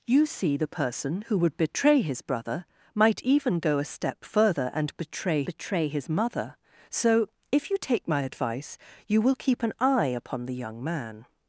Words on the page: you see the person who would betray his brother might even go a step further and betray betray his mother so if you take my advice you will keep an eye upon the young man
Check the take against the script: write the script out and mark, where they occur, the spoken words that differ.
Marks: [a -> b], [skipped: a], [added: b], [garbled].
you see the person who would betray his brother might even go a step further and betray betray his mother so if you take my advice you will keep an eye upon the young man